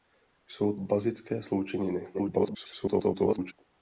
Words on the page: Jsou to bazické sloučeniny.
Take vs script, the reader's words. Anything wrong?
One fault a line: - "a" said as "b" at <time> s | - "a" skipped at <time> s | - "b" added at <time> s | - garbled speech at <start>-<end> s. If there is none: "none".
- "to" skipped at 0.8 s
- garbled speech at 2.1-3.5 s